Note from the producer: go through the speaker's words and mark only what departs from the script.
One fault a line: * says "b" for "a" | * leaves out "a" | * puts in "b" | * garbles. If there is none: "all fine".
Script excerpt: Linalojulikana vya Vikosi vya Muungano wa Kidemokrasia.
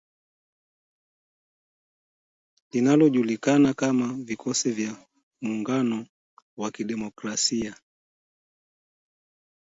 * says "kama" for "vya"